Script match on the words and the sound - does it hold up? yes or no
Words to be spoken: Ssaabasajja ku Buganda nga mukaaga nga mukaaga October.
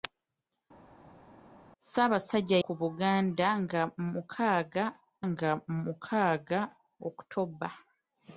yes